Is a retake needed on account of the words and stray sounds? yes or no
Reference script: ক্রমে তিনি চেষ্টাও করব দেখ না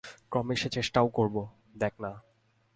yes